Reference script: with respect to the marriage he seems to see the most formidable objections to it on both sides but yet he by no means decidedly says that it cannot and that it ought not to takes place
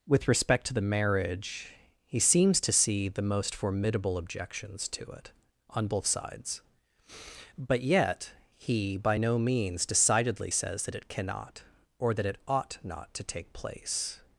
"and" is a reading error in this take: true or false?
true